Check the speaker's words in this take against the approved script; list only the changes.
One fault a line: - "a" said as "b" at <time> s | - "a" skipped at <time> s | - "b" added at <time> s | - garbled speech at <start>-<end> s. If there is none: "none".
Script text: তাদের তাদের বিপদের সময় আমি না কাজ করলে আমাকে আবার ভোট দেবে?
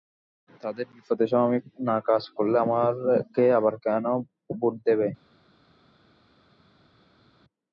- "তাদের" skipped at 0.8 s
- "কেন" added at 3.9 s